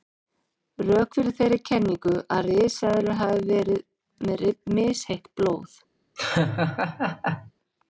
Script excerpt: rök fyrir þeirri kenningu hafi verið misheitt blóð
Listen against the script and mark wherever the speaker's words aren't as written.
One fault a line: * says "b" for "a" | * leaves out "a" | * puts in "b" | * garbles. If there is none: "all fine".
* puts in "að risaeðlur"
* puts in "með"